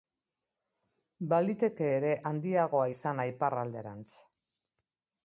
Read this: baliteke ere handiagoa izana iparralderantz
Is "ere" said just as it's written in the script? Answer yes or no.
yes